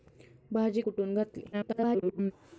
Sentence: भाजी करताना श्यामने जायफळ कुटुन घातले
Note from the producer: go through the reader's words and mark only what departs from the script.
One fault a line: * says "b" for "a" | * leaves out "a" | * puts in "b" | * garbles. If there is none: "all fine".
* leaves out "करताना श्यामने जायफळ"
* garbles